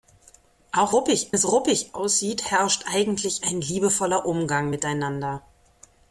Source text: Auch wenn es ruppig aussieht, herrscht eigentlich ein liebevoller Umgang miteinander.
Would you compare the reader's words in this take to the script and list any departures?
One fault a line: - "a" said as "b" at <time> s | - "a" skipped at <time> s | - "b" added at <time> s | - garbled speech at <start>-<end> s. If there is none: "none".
- "wenn" said as "ruppig" at 0.9 s